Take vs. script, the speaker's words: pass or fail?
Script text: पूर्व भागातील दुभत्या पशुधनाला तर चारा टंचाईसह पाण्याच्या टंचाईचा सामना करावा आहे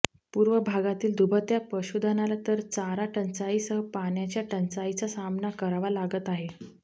fail